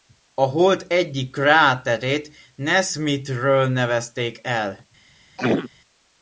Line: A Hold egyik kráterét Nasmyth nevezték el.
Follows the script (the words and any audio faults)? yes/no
no